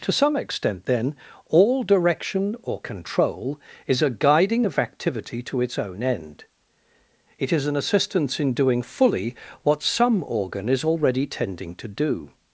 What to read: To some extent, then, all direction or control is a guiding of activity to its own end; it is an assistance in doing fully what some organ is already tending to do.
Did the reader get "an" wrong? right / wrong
right